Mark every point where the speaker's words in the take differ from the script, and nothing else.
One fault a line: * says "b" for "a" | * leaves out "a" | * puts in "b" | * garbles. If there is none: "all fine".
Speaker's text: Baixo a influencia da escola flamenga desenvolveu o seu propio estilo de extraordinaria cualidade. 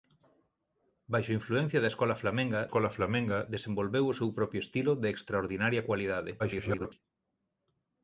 * puts in "escola flamenga"
* garbles